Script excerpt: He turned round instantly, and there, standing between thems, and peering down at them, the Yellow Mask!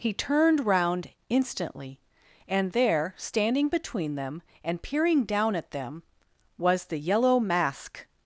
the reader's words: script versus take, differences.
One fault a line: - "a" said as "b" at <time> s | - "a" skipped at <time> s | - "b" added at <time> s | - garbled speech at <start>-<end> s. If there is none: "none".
- "thems" said as "them" at 4.2 s
- "was" added at 6.6 s